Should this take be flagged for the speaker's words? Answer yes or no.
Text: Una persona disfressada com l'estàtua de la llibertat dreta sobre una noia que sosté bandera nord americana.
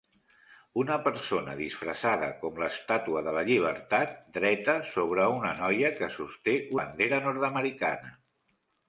no